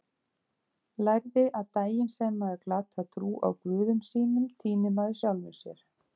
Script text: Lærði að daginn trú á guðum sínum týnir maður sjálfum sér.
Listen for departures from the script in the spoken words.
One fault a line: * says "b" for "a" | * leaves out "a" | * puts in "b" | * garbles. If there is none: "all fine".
* puts in "sem maður glatar"